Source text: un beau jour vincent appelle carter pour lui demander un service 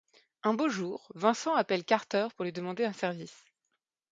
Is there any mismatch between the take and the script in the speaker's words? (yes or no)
no